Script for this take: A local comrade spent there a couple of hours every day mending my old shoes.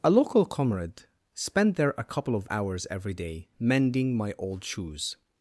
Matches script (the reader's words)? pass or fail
pass